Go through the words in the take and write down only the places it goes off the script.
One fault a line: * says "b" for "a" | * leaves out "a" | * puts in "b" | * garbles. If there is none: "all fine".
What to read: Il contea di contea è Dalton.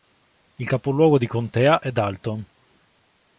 * says "capoluogo" for "contea"